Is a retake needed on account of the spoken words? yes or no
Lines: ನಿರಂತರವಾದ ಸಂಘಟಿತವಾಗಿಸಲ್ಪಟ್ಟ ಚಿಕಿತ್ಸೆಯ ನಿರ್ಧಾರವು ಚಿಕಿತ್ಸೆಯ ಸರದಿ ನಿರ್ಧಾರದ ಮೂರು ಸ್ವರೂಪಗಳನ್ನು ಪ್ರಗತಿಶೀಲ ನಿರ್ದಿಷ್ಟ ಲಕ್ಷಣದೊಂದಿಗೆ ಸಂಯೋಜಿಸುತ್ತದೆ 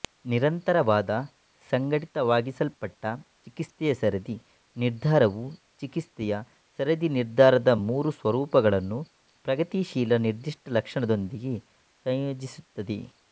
yes